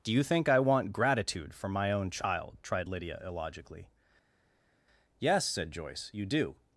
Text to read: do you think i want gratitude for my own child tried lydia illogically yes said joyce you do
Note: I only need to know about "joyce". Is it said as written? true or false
true